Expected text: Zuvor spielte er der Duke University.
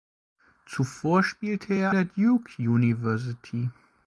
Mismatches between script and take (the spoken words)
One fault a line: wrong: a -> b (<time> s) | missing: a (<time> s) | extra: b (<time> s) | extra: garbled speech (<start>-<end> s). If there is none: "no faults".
no faults